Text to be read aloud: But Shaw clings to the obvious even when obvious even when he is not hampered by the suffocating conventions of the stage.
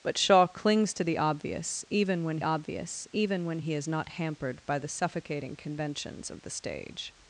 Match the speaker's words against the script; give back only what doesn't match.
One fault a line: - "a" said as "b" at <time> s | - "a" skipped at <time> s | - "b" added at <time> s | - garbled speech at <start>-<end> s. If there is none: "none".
none